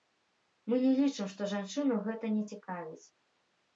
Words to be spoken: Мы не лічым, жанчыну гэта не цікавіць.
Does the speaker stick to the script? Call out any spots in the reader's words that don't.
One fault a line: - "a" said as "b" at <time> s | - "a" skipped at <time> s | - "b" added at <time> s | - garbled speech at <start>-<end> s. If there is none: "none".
- "што" added at 1.4 s